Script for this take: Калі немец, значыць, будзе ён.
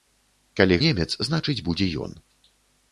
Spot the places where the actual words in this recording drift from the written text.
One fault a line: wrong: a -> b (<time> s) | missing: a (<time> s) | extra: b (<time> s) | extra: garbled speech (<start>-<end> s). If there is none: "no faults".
no faults